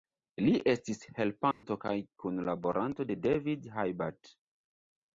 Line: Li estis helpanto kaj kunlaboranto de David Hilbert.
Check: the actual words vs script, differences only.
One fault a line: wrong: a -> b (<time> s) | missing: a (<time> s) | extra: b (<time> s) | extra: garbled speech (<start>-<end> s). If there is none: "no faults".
no faults